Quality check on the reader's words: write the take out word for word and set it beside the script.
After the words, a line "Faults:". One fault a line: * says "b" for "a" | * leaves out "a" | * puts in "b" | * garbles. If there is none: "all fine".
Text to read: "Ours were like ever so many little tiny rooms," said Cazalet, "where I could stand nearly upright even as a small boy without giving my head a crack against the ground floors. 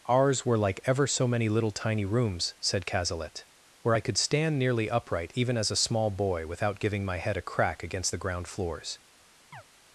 "Ours were like ever so many little tiny rooms," said Cazalet, "where I could stand nearly upright even as a small boy without giving my head a crack against the ground floors.
Faults:
all fine